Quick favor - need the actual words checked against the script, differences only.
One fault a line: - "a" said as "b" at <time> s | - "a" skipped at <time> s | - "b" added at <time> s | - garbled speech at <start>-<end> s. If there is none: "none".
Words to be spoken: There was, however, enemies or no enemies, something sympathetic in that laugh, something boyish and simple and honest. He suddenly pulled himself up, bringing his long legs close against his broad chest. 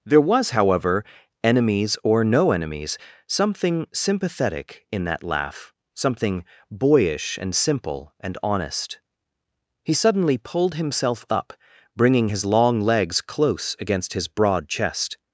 none